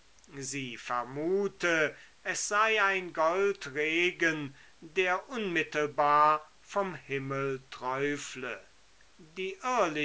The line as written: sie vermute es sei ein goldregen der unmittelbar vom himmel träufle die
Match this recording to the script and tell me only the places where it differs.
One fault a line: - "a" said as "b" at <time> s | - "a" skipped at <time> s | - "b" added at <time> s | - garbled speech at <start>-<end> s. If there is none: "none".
none